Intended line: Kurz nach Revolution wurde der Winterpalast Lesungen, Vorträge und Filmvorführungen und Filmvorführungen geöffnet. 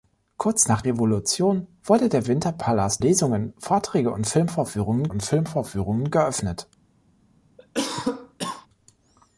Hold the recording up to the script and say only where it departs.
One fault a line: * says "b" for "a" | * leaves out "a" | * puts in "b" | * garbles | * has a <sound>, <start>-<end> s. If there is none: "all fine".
* has a cough, 7.6-8.7 s